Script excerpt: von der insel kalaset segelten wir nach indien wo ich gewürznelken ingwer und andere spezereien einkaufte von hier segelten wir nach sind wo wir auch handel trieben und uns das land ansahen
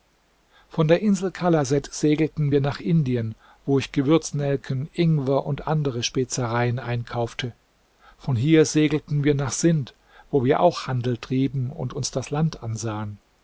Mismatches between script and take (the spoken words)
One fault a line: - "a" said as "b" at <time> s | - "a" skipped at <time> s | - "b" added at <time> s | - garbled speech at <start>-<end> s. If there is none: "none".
none